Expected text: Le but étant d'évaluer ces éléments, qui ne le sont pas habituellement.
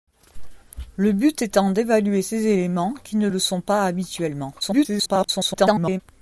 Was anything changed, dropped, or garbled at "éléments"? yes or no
no